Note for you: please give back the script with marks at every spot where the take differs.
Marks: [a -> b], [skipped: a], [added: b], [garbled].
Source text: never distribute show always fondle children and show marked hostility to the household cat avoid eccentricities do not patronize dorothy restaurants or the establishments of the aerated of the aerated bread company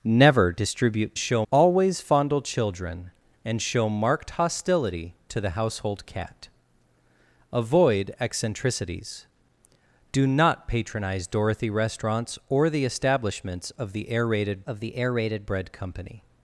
never distribute show always fondle children and show marked hostility to the household cat avoid eccentricities do not patronize dorothy restaurants or the establishments of the aerated of the aerated bread company